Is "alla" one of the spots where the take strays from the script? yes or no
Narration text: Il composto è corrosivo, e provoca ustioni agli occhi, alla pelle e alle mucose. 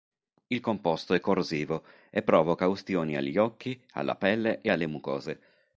no